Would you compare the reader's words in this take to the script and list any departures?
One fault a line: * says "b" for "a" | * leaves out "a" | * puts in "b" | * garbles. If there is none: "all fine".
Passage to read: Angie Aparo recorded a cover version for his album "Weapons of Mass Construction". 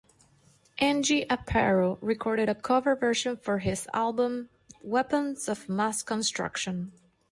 all fine